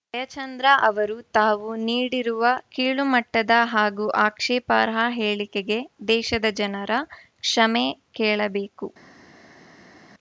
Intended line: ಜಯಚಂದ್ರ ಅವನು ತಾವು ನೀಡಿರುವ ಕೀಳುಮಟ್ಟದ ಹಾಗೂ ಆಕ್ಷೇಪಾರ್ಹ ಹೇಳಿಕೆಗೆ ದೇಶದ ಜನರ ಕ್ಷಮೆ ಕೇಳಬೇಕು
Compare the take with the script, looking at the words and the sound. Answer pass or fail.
fail